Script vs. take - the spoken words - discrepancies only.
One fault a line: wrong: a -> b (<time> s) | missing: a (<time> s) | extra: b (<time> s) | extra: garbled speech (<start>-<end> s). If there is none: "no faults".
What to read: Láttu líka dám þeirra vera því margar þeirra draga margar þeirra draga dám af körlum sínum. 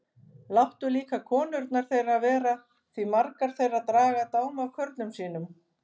wrong: dám -> konurnar (1.3 s)
missing: margar þeirra draga (4.3 s)